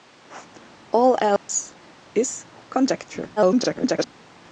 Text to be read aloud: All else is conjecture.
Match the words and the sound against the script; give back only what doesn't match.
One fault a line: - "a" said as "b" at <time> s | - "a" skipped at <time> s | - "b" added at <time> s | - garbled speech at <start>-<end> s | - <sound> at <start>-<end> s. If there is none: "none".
- dropout at 1.4-1.5 s
- garbled speech at 3.4-4.1 s